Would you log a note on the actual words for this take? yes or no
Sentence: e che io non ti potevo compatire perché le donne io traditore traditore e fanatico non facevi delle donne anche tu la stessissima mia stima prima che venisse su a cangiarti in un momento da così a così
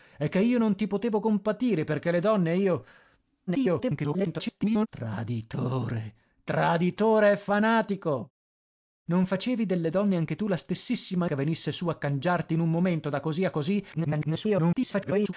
yes